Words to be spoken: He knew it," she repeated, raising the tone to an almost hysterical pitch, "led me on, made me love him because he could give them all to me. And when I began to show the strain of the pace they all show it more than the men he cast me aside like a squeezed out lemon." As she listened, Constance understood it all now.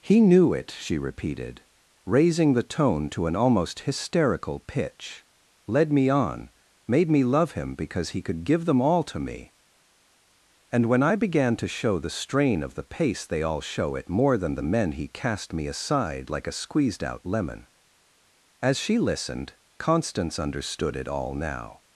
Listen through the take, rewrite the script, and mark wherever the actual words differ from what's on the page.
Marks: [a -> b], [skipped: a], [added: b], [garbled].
He knew it," she repeated, raising the tone to an almost hysterical pitch, "led me on, made me love him because he could give them all to me. And when I began to show the strain of the pace they all show it more than the men he cast me aside like a squeezed out lemon." As she listened, Constance understood it all now.